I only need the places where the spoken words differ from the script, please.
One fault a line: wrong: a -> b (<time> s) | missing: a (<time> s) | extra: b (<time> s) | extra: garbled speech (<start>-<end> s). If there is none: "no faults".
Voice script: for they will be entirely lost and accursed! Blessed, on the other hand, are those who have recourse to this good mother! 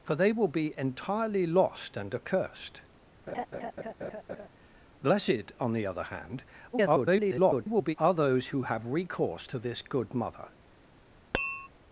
extra: garbled speech (6.7-8.0 s)